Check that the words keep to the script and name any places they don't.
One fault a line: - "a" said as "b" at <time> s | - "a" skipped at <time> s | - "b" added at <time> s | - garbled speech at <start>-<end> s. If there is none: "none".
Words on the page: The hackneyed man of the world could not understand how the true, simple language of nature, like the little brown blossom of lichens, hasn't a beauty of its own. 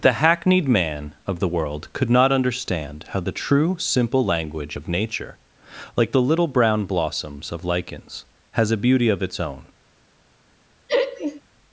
- "blossom" said as "blossoms" at 6.9 s
- "hasn't" said as "has" at 8.5 s